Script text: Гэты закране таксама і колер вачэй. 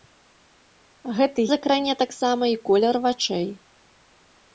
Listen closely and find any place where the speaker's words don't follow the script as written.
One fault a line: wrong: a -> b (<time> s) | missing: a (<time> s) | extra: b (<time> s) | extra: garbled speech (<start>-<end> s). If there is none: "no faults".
no faults